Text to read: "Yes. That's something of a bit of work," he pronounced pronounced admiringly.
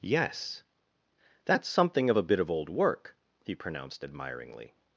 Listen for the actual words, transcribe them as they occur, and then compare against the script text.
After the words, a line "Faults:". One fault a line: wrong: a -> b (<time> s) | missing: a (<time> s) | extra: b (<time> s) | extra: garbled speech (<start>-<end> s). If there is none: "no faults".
"Yes. That's something of a bit of old work," he pronounced admiringly.
Faults:
extra: old (2.5 s)
missing: pronounced (4.1 s)